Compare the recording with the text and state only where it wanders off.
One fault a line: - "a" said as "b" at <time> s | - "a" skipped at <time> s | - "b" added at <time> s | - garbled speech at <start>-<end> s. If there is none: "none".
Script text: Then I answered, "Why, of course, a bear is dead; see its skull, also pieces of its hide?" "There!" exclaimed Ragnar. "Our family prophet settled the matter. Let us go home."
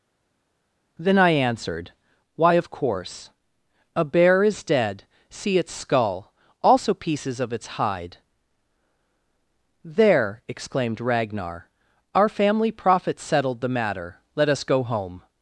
none